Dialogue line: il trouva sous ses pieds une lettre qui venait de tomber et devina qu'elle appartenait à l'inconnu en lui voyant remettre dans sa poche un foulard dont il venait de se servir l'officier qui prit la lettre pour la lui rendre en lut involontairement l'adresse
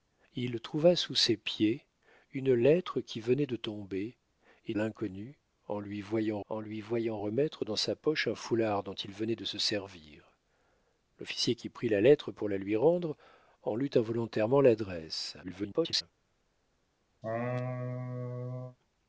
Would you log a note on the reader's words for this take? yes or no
yes